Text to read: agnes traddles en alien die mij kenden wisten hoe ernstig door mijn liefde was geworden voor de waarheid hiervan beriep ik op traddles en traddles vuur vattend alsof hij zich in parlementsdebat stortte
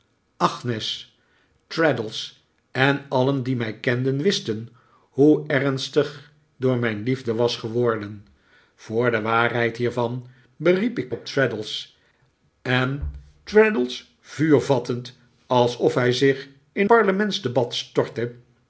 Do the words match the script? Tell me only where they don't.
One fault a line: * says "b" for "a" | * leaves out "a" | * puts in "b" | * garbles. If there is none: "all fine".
all fine